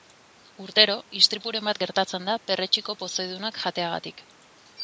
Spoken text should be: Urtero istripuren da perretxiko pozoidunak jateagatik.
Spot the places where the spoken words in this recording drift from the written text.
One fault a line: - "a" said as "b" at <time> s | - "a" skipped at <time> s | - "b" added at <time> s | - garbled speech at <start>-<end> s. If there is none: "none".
- "bat gertatzen" added at 1.7 s